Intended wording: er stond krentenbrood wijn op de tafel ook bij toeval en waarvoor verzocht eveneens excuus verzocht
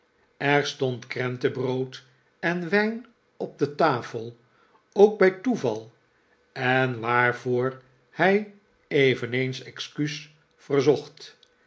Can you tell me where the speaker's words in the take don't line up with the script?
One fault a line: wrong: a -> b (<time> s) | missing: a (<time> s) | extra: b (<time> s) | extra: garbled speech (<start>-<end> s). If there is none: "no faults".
extra: en (2.4 s)
wrong: verzocht -> hij (8.1 s)